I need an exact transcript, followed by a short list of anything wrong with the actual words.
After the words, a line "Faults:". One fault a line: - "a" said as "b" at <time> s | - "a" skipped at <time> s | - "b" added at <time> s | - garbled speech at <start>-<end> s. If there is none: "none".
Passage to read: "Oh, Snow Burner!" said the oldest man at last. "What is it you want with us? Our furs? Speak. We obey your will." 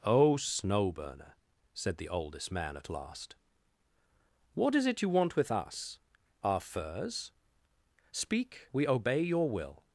"Oh, Snow Burner!" said the oldest man at last. "What is it you want with us? Our furs? Speak. We obey your will."
Faults:
none